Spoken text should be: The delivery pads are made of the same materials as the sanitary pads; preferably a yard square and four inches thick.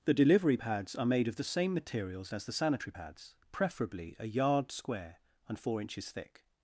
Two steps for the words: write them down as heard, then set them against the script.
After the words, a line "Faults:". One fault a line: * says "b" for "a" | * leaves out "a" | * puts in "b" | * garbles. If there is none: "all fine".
The delivery pads are made of the same materials as the sanitary pads; preferably a yard square and four inches thick.
Faults:
all fine